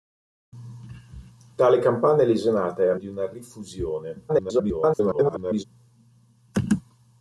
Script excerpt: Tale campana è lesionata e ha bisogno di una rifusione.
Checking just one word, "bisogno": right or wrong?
wrong